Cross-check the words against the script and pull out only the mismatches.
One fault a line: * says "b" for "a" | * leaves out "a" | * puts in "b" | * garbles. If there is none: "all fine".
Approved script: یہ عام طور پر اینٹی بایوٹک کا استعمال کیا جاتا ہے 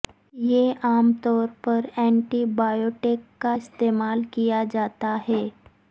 all fine